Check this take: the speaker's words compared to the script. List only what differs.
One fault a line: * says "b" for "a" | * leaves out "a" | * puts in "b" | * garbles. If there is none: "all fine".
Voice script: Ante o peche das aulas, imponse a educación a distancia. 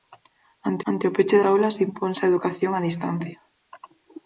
* puts in "ante"
* leaves out "das"